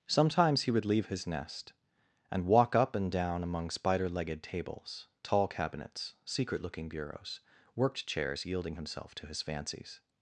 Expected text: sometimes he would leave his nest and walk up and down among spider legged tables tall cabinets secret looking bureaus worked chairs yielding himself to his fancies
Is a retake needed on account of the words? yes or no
no